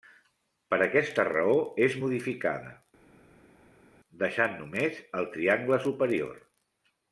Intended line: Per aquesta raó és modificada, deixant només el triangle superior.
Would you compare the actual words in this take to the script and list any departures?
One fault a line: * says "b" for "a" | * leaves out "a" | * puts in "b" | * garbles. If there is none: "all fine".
all fine